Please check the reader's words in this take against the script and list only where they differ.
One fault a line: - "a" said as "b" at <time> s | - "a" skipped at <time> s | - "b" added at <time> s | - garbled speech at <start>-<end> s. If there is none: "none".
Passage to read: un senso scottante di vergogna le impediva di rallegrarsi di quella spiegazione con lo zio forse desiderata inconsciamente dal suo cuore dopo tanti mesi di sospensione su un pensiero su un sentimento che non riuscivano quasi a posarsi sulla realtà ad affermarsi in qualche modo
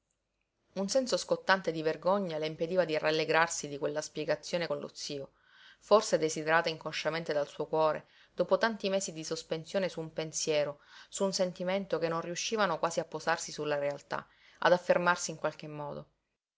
none